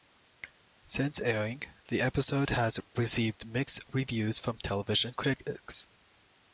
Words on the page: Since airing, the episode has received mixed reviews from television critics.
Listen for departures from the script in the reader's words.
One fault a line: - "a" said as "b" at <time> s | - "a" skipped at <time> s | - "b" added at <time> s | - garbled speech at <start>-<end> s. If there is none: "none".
none